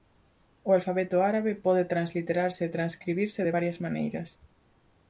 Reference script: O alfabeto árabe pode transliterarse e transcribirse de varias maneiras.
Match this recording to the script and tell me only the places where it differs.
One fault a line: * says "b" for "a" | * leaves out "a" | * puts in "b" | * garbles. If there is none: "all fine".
all fine